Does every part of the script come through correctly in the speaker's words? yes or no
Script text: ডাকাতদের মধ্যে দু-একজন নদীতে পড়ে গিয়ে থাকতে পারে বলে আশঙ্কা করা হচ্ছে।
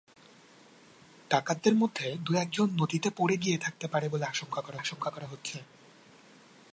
no